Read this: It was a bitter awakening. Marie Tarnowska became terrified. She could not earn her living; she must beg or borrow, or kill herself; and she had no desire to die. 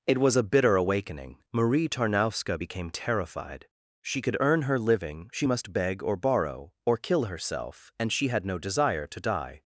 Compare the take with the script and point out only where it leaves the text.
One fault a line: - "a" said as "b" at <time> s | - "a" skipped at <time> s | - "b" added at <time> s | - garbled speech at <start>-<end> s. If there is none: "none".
- "not" skipped at 4.4 s